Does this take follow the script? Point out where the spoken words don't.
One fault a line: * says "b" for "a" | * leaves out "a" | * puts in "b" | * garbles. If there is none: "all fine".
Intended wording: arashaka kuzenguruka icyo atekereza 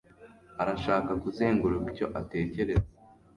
all fine